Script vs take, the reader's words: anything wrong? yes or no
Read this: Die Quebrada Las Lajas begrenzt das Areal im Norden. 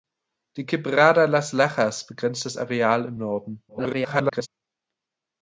yes